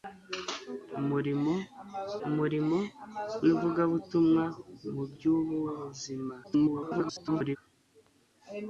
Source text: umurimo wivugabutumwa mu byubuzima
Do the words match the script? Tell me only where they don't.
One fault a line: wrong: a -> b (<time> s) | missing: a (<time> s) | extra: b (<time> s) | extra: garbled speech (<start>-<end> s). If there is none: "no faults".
extra: umurimo (2.3 s)
extra: garbled speech (6.4-7.6 s)